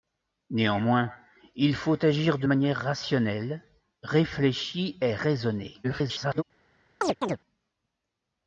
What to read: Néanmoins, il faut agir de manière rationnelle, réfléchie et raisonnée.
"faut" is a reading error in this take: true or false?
false